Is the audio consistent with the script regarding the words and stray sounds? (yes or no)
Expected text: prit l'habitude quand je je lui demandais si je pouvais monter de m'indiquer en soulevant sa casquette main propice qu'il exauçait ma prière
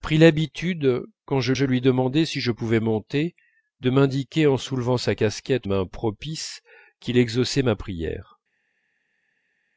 yes